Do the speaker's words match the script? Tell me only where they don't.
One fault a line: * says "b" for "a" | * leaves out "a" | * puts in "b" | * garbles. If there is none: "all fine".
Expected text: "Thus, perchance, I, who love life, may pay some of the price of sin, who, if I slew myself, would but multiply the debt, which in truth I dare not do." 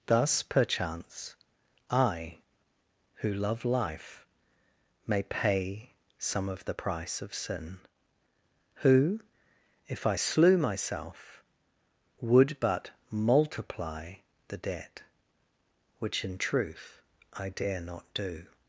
all fine